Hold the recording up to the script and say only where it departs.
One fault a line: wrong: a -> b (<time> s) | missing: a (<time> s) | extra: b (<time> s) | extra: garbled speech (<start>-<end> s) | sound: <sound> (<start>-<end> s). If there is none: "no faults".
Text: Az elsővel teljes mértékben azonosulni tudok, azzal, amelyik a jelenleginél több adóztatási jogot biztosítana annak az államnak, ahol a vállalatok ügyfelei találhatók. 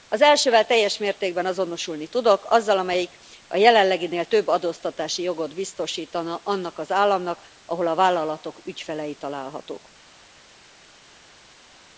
no faults